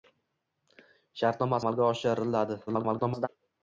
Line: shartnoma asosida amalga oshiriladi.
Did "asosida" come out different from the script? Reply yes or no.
yes